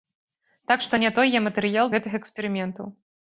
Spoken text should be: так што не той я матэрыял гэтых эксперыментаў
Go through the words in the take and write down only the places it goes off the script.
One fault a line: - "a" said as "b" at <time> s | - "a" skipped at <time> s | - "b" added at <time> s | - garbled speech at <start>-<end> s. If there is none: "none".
none